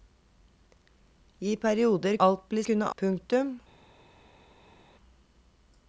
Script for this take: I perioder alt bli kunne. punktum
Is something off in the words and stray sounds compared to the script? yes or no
no